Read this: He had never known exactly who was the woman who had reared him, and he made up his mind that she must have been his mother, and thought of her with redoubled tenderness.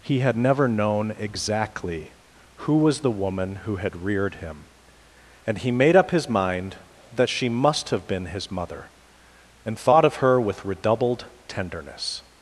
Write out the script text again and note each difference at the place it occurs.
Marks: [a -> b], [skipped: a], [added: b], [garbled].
He had never known exactly who was the woman who had reared him, and he made up his mind that she must have been his mother, and thought of her with redoubled tenderness.